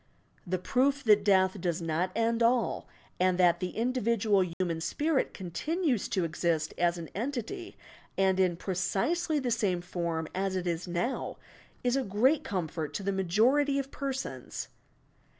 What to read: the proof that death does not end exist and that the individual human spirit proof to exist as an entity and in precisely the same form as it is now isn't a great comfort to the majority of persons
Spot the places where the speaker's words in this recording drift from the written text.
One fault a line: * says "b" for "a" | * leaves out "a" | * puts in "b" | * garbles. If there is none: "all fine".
* says "all" for "exist"
* says "continues" for "proof"
* says "is" for "isn't"